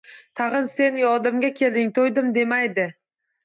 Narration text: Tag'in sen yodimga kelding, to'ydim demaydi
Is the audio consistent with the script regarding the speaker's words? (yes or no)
yes